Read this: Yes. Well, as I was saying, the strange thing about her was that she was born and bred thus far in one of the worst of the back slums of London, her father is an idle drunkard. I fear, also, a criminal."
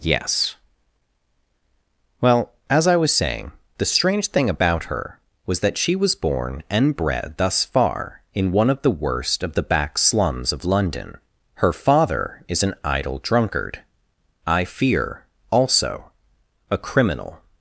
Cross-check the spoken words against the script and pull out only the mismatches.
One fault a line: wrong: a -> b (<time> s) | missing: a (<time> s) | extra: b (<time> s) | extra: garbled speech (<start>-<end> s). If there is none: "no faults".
no faults